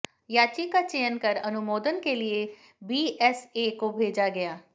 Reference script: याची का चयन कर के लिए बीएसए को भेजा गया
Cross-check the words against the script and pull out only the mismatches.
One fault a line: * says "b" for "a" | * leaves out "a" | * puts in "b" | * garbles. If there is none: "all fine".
* puts in "अनुमोदन"